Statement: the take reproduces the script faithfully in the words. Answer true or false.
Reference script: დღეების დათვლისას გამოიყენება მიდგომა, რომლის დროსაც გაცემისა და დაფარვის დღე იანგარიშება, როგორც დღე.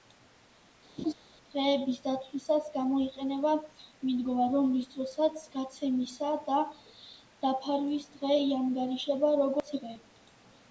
true